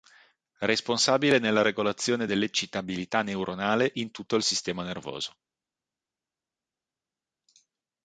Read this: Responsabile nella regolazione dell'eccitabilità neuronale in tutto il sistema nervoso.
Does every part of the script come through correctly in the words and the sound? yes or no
yes